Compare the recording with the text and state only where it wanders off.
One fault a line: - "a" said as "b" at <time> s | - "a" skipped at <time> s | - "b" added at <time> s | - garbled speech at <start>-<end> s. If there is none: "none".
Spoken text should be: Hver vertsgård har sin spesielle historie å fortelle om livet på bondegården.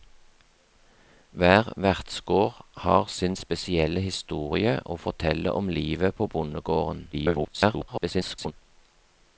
- garbled speech at 7.1-8.5 s